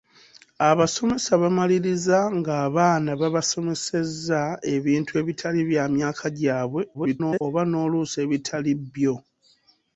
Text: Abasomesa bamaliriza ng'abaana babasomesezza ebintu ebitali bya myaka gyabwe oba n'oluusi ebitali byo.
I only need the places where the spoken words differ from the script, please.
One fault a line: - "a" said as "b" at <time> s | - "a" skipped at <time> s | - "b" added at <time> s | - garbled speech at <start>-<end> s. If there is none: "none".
- garbled speech at 6.9-7.4 s